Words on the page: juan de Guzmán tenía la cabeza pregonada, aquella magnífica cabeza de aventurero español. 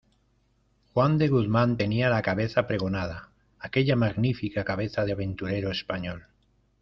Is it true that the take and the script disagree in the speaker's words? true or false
false